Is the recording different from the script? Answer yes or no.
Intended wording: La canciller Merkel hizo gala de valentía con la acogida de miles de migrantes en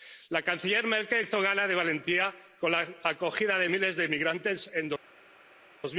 no